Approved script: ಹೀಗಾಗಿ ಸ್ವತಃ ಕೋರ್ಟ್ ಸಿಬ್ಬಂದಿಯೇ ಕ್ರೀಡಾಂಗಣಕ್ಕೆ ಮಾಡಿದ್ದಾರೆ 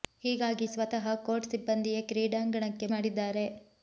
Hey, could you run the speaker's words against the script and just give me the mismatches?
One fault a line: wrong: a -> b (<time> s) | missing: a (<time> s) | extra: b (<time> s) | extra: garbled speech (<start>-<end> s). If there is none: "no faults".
no faults